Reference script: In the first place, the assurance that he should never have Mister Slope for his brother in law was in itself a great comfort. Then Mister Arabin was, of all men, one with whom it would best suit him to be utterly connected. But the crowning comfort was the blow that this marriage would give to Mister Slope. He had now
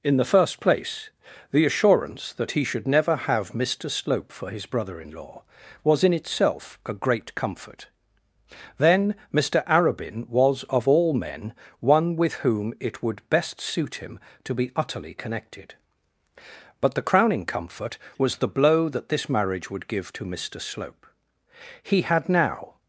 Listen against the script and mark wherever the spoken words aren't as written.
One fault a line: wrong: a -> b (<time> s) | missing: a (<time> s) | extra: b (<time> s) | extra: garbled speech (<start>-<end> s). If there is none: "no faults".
no faults